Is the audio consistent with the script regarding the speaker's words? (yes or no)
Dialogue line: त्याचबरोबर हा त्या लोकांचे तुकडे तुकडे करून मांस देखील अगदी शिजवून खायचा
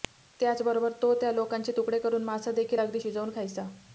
no